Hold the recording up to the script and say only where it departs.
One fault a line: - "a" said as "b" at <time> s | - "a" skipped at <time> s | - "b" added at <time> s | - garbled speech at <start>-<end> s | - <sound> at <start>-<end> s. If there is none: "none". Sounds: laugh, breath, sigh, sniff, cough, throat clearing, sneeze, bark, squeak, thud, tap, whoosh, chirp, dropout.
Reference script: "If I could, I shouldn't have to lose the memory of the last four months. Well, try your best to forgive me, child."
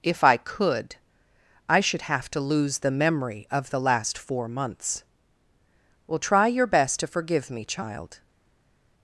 - "shouldn't" said as "should" at 1.8 s